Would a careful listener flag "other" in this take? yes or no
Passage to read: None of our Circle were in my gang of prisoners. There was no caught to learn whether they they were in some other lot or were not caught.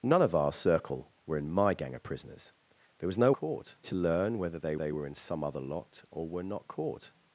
no